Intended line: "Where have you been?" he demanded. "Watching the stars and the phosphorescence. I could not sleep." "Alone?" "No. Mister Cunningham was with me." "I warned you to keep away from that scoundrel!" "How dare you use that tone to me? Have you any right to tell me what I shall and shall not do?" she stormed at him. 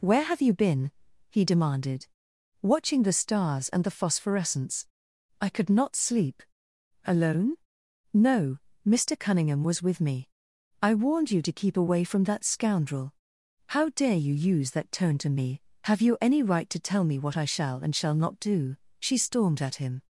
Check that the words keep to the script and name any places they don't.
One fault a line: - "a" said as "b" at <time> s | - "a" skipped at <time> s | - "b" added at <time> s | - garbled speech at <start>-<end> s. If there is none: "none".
none